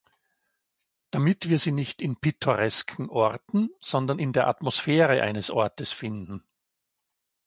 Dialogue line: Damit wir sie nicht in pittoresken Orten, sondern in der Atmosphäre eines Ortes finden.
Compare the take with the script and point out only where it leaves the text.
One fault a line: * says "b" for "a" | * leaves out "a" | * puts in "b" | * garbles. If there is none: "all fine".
all fine